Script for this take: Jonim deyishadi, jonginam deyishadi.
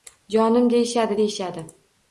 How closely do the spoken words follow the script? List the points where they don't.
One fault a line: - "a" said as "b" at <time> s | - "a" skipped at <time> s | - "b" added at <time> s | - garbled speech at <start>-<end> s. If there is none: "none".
- "jonginam" skipped at 1.2 s